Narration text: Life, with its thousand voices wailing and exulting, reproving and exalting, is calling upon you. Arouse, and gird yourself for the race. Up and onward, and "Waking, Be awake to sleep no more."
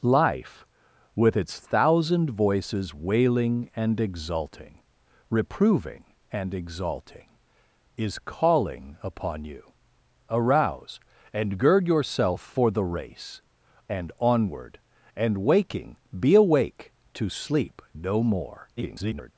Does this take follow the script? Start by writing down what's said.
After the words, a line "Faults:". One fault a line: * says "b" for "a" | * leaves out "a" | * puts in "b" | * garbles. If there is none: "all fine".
Life, with its thousand voices wailing and exulting, reproving and exalting, is calling upon you. Arouse, and gird yourself for the race. And onward, and "Waking, Be awake to sleep no more." [garbled]
Faults:
* leaves out "Up"
* garbles